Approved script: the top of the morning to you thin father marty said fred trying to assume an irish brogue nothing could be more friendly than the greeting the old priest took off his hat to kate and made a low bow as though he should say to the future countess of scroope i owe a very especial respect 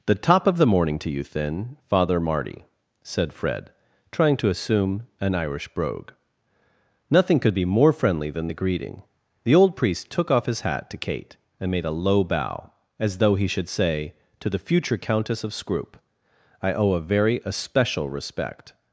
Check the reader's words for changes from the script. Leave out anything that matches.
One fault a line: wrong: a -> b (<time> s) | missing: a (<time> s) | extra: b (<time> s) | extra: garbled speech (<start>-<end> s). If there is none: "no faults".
no faults